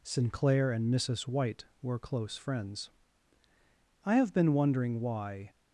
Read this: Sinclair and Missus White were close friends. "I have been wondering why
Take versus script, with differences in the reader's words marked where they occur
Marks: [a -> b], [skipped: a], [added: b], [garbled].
Sinclair and Missus White were close friends. "I have been wondering why